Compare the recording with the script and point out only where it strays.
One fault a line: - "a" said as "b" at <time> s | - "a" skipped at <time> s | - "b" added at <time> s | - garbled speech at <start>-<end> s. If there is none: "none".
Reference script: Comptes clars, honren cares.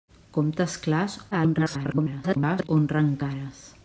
- garbled speech at 1.3-2.7 s